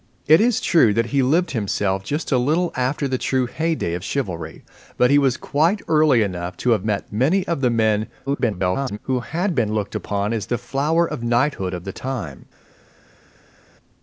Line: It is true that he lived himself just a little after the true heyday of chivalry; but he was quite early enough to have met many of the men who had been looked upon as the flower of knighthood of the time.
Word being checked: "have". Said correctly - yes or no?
yes